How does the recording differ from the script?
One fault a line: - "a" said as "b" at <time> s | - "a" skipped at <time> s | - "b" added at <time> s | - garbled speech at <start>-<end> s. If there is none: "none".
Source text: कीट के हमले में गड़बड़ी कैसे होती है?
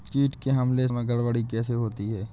none